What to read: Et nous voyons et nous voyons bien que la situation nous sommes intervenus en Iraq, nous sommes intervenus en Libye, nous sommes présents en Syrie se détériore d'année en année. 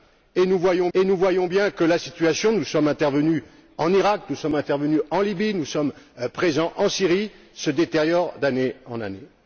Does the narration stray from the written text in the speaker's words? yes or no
no